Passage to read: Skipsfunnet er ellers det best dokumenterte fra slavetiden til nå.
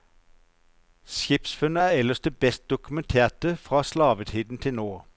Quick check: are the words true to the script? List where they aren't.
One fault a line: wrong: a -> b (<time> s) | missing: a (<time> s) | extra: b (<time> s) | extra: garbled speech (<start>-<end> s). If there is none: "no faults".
no faults